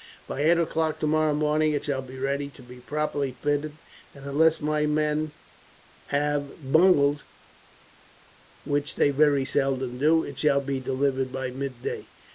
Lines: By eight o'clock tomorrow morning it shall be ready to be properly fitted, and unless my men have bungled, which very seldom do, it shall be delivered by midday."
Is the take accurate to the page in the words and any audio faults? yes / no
no